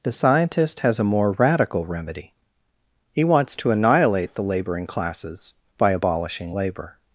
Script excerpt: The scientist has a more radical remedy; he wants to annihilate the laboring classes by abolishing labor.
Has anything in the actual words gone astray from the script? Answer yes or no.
no